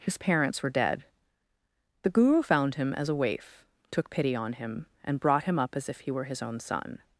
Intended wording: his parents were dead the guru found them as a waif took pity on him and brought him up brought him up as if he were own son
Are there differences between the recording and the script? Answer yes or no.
yes